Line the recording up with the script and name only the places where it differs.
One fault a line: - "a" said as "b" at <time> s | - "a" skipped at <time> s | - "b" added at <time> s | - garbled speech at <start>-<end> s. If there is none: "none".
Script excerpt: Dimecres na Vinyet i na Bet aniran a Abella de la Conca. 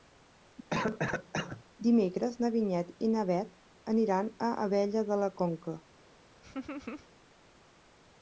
none